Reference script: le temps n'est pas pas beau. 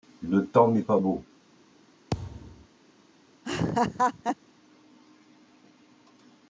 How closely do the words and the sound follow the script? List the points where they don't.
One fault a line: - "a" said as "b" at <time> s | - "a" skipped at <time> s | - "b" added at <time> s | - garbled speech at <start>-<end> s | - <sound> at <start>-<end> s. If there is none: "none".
- "pas" skipped at 1.0 s
- thud at 2.1-2.7 s
- laugh at 3.4-4.4 s